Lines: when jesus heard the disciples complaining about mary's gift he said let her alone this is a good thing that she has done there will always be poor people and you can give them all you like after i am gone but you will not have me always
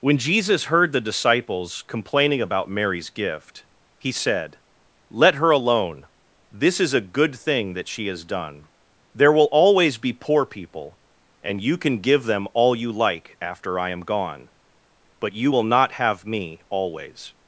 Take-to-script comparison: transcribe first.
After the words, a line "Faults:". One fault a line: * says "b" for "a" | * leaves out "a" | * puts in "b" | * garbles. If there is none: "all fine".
when jesus heard the disciples complaining about mary's gift he said let her alone this is a good thing that she has done there will always be poor people and you can give them all you like after i am gone but you will not have me always
Faults:
all fine